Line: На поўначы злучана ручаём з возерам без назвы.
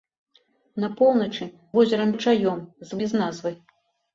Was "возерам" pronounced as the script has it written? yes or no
no